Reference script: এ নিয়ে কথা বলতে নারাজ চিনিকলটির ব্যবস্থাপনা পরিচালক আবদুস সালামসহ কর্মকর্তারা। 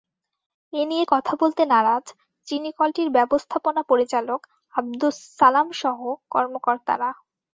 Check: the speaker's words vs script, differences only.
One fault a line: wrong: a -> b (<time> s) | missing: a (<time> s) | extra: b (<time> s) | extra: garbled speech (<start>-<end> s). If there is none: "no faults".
no faults